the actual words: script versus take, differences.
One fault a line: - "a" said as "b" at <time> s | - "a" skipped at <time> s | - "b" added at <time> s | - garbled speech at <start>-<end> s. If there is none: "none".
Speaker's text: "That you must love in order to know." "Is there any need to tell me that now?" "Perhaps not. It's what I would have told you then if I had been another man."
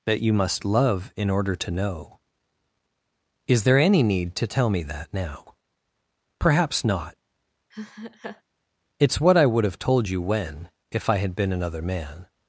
- "then" said as "when" at 10.2 s